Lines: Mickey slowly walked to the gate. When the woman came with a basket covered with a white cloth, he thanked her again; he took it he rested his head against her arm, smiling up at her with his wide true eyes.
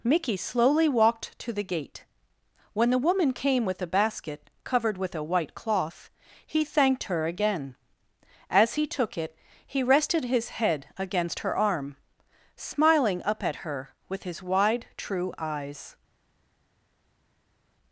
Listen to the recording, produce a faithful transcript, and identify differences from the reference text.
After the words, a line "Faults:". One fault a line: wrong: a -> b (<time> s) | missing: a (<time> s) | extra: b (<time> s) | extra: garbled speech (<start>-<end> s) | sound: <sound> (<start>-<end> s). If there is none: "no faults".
Mickey slowly walked to the gate. When the woman came with a basket covered with a white cloth, he thanked her again; as he took it he rested his head against her arm, smiling up at her with his wide true eyes.
Faults:
extra: as (8.5 s)